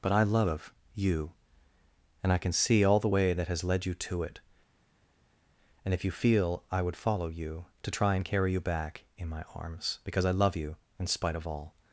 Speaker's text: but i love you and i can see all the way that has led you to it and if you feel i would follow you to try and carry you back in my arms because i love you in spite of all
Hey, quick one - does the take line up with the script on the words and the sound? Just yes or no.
yes